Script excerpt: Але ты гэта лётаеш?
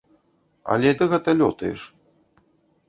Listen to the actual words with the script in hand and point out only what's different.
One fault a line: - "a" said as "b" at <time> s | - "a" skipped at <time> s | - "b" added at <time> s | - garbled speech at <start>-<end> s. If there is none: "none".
none